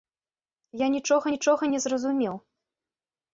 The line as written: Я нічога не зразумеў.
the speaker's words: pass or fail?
fail